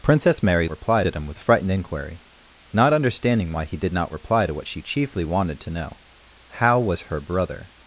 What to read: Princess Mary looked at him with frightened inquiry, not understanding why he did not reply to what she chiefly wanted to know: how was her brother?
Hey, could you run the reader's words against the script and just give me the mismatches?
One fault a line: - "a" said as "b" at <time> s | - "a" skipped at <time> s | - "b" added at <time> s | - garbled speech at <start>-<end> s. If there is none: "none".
- "looked" said as "reply" at 0.7 s